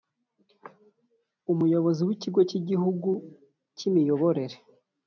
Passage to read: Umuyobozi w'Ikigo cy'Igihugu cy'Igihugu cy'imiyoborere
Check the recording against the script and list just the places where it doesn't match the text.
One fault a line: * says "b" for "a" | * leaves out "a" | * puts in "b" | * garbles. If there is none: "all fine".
* leaves out "cy'Igihugu"